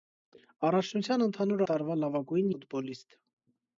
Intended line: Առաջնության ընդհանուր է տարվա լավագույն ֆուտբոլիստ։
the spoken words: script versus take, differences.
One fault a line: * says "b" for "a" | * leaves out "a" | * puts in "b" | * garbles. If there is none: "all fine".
all fine